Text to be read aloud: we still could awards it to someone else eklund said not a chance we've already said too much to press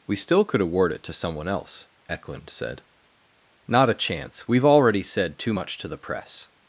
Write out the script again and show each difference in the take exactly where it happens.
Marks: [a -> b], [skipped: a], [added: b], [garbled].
we still could [awards -> award] it to someone else eklund said not a chance we've already said too much to [added: the] press